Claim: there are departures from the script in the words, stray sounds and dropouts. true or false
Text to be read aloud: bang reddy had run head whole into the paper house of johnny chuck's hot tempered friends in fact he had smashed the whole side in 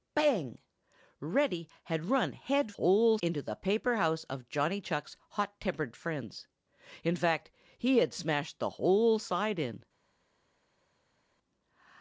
false